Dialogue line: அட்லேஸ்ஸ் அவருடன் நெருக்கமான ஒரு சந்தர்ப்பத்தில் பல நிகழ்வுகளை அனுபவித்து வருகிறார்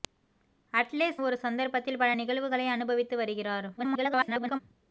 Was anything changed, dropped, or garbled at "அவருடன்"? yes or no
yes